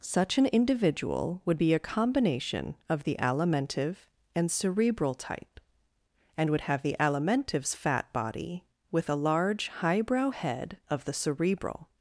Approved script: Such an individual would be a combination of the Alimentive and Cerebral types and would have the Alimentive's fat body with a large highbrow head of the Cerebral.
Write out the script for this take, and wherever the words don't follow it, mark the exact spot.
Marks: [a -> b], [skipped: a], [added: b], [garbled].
Such an individual would be a combination of the Alimentive and Cerebral [types -> type] and would have the Alimentive's fat body with a large highbrow head of the Cerebral.